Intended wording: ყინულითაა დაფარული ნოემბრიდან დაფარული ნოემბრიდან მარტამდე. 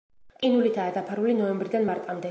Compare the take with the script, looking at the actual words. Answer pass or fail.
fail